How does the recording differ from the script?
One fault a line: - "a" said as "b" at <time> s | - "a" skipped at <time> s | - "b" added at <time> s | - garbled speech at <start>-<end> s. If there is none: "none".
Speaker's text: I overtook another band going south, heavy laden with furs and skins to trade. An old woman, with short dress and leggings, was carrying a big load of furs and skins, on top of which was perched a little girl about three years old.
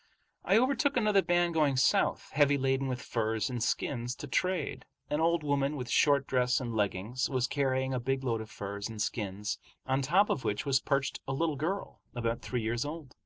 none